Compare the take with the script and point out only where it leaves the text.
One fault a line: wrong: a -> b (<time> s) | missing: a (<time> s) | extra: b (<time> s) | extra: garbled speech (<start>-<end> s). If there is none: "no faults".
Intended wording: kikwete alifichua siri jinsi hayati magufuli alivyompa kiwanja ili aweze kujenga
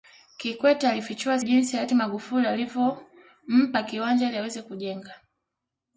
missing: siri (1.4 s)